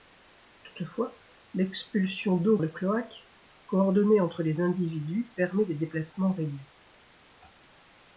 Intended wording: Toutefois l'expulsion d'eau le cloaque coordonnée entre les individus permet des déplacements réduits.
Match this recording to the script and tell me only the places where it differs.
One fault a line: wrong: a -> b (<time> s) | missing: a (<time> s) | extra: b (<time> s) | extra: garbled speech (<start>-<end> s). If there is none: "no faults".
no faults